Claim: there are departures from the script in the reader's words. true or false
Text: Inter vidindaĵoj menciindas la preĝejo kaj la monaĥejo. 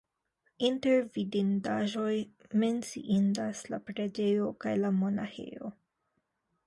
false